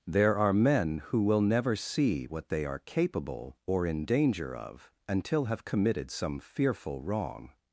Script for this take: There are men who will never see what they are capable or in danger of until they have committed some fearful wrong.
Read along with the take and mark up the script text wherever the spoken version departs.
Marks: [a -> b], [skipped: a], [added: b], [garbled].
There are men who will never see what they are capable or in danger of until [skipped: they] have committed some fearful wrong.